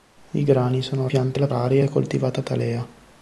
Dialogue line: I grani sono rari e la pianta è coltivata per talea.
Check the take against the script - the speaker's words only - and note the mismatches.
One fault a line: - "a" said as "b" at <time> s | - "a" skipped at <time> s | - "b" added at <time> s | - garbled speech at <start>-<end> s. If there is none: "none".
- "rari" said as "pianta" at 1.1 s
- "pianta" said as "rari" at 1.5 s
- "per" skipped at 2.4 s